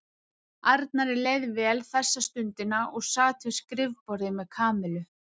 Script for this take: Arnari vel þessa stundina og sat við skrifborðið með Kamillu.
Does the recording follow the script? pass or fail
fail